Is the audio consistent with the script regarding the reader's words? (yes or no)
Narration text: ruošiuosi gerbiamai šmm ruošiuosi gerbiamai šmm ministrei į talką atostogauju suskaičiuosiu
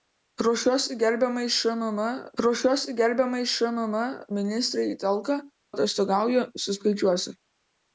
yes